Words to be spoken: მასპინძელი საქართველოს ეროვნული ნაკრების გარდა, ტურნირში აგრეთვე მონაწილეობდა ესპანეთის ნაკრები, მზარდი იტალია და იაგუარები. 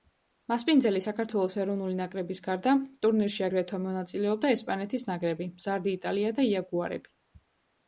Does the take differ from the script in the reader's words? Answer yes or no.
no